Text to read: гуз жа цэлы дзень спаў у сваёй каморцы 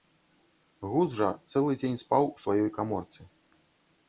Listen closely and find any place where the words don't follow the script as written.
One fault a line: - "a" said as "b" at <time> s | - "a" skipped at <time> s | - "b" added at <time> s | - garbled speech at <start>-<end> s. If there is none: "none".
none